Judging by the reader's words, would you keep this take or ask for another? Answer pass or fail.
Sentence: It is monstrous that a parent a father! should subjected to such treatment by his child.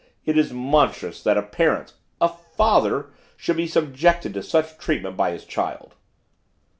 fail